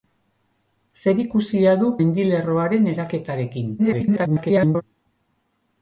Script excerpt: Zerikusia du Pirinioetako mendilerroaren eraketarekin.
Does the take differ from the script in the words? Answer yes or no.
yes